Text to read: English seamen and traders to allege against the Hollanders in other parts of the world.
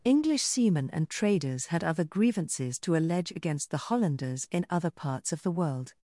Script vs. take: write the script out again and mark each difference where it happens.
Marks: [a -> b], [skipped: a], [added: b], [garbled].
English seamen and traders [added: had other grievances] to allege against the Hollanders in other parts of the world.